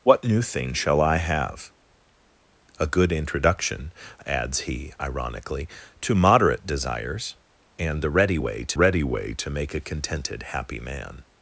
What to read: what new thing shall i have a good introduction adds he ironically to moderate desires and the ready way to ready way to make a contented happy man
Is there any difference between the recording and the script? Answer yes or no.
no